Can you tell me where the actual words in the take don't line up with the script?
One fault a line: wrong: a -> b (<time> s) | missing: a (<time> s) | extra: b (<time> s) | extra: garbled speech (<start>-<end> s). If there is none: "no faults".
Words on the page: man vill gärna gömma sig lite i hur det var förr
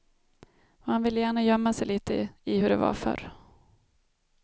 no faults